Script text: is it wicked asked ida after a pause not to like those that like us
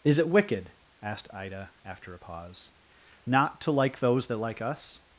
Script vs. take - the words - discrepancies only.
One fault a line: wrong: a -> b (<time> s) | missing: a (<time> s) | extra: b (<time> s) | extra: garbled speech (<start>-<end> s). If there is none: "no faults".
no faults